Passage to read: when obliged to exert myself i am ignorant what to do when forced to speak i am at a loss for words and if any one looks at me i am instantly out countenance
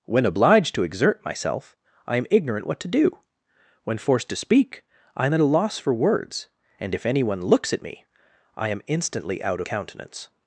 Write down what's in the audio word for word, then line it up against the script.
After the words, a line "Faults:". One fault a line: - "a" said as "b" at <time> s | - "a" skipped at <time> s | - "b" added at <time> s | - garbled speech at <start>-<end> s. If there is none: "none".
when obliged to exert myself i am ignorant what to do when forced to speak i am at a loss for words and if any one looks at me i am instantly out countenance
Faults:
none